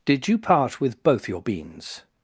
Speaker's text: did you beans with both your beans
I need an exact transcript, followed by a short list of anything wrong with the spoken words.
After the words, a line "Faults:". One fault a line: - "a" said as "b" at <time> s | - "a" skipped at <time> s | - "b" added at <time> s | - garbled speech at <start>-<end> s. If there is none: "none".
did you part with both your beans
Faults:
- "beans" said as "part" at 0.4 s